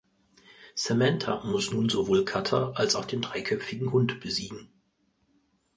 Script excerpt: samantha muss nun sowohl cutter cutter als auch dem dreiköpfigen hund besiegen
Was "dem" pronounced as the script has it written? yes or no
no